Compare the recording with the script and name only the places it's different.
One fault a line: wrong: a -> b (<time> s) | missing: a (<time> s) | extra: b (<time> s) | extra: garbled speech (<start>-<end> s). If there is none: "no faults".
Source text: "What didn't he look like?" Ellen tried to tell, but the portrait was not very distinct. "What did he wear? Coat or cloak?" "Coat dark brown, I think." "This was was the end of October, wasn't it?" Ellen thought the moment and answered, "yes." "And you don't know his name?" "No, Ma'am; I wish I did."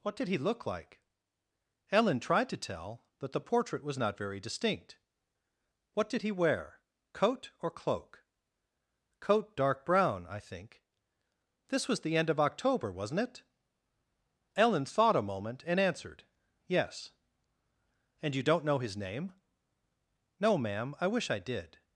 wrong: didn't -> did (0.1 s)
missing: was (12.0 s)
wrong: the -> a (15.2 s)